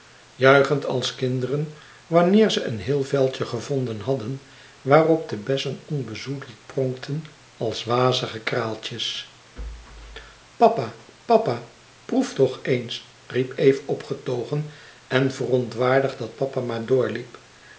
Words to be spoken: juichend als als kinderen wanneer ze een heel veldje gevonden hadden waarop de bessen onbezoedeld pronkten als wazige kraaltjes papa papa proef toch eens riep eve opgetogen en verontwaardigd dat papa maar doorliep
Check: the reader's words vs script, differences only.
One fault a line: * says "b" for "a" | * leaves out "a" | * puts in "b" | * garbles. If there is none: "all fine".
* leaves out "als"